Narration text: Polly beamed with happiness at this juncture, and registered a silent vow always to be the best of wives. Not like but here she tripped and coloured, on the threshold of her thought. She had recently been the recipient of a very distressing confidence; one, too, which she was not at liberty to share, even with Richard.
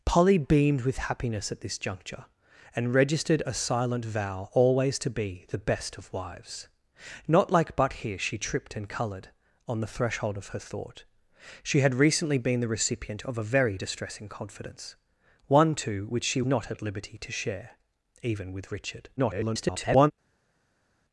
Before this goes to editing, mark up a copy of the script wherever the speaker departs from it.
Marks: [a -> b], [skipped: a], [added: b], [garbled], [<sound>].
Polly beamed with happiness at this juncture, and registered a silent vow always to be the best of wives. Not like but here she tripped and coloured, on the threshold of her thought. She had recently been the recipient of a very distressing confidence; one, too, which she [skipped: was] not at liberty to share, even with Richard. [garbled]